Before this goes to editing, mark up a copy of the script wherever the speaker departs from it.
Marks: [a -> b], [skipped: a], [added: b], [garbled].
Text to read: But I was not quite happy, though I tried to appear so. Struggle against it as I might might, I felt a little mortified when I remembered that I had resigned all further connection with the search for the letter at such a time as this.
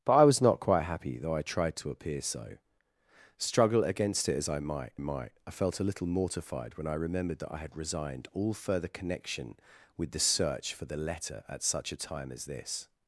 But I was not quite happy, though I tried to appear so. Struggle against it as I might might, I felt a little mortified when I remembered that I had resigned all further connection with the search for the letter at such a time as this.